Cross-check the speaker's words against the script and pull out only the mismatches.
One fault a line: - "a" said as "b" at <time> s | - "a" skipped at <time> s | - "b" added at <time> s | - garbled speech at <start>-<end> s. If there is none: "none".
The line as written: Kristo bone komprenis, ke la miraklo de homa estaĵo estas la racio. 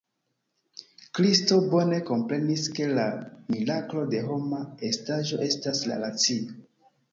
none